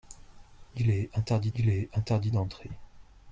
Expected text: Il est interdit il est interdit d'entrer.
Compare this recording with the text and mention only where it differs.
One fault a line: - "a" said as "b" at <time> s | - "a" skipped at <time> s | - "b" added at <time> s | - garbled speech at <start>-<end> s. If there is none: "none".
none